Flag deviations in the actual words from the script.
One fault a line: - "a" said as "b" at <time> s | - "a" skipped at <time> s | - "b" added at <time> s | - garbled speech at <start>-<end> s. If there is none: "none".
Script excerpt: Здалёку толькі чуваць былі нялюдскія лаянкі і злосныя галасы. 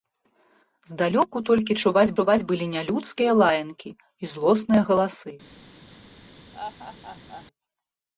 - "чуваць" added at 2.2 s